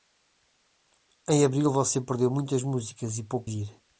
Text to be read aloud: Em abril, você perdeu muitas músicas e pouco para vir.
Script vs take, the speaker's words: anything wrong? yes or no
yes